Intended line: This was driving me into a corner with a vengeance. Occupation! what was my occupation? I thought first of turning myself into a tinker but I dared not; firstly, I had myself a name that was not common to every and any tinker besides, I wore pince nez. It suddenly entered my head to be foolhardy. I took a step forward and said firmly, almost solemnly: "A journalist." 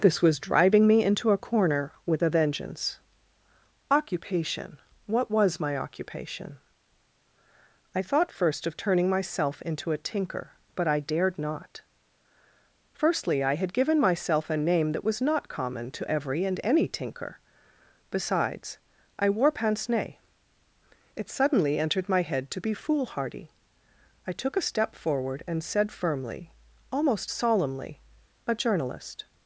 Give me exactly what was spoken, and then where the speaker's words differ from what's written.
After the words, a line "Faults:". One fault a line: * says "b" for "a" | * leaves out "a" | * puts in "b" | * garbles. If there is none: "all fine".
This was driving me into a corner with a vengeance. Occupation! what was my occupation? I thought first of turning myself into a tinker but I dared not; firstly, I had given myself a name that was not common to every and any tinker besides, I wore pince nez. It suddenly entered my head to be foolhardy. I took a step forward and said firmly, almost solemnly: "A journalist."
Faults:
* puts in "given"